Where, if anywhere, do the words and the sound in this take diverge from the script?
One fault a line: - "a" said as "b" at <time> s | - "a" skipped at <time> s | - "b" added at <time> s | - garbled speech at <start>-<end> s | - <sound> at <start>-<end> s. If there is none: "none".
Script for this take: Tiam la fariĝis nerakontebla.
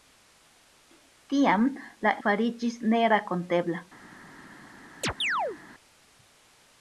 - chirp at 5.0-5.6 s